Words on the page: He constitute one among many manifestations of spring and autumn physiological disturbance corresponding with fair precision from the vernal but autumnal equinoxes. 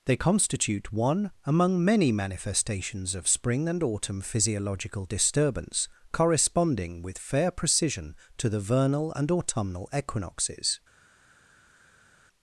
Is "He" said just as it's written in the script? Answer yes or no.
no